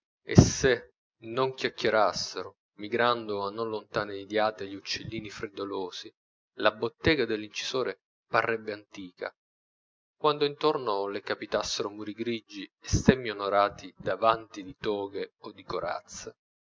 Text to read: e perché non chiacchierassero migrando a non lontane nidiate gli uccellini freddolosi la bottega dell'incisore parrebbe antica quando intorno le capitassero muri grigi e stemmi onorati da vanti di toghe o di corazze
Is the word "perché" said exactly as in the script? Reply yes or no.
no